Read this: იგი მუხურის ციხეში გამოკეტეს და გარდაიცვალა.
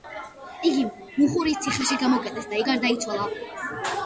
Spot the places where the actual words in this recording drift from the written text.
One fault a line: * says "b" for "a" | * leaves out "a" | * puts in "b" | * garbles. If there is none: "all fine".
all fine